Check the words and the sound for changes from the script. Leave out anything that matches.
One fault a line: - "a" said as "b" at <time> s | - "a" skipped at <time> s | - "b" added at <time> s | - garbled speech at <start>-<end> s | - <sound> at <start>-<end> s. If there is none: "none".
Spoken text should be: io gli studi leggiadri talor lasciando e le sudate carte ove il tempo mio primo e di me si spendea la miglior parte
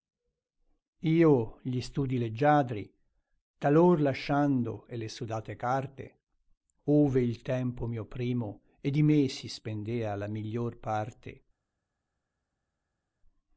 none